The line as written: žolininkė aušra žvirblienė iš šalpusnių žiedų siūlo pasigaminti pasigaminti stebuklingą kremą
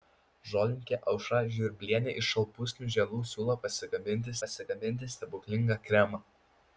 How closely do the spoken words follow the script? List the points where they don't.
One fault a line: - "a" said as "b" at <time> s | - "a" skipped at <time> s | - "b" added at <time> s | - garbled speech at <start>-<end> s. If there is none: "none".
none